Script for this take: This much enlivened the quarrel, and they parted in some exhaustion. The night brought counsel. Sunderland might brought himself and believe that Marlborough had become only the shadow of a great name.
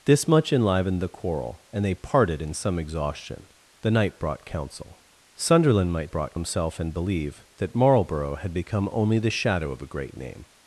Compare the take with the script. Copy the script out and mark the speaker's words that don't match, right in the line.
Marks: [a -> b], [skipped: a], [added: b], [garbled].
This much enlivened the quarrel, and they parted in some exhaustion. The night brought counsel. Sunderland might brought himself and believe that Marlborough had become only the shadow of a great name.